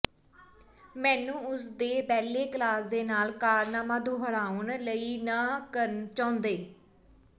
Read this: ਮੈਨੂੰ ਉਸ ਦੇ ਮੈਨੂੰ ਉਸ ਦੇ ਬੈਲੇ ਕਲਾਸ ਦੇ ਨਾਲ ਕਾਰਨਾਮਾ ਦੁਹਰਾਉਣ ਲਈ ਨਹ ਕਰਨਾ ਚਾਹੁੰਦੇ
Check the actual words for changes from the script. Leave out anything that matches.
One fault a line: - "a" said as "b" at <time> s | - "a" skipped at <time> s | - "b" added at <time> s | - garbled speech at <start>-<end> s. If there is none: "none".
- "ਮੈਨੂੰ ਉਸ ਦੇ" skipped at 2.0 s